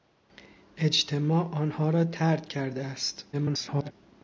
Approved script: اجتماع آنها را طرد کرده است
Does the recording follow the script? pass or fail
fail